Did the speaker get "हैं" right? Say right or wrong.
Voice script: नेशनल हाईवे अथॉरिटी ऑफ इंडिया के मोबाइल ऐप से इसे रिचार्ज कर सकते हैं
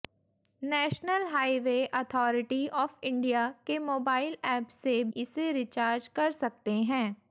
right